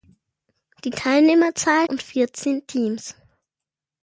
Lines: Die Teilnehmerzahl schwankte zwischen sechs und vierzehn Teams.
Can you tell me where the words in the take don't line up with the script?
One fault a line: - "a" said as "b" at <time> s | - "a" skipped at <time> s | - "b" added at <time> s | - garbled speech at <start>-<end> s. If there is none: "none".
- "schwankte zwischen sechs" skipped at 1.9 s